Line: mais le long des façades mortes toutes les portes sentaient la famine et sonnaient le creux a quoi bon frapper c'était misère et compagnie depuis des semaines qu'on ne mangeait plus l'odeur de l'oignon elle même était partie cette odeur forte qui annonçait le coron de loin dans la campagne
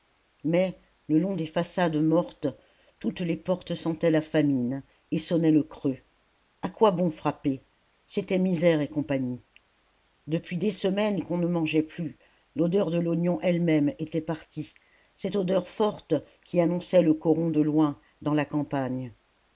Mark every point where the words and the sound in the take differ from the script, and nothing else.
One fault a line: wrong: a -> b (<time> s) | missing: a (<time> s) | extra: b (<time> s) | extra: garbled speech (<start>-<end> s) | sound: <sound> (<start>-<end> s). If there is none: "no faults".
no faults